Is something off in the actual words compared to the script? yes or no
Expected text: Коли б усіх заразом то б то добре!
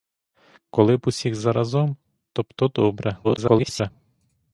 yes